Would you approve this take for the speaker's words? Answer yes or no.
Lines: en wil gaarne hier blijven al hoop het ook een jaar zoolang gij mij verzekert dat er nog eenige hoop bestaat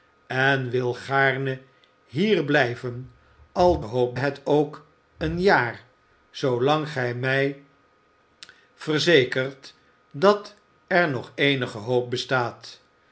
yes